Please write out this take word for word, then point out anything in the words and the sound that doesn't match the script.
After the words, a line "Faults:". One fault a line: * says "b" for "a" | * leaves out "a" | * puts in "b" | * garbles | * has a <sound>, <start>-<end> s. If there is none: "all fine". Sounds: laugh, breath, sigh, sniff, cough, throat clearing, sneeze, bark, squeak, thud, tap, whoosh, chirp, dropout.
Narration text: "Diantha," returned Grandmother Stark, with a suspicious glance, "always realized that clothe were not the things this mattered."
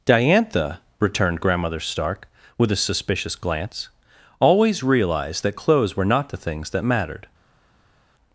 "Diantha," returned Grandmother Stark, with a suspicious glance, "always realized that clothes were not the things that mattered."
Faults:
* says "clothes" for "clothe"
* says "that" for "this"